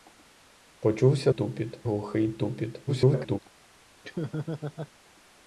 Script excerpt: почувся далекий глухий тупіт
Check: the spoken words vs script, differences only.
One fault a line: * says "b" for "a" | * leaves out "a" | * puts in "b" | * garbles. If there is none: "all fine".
* says "тупіт" for "далекий"
* garbles